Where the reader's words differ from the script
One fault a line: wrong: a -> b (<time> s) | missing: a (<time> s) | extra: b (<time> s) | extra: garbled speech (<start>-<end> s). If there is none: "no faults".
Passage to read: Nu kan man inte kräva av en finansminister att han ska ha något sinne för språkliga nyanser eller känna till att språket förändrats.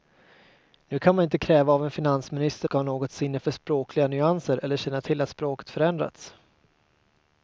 missing: att han (2.7 s)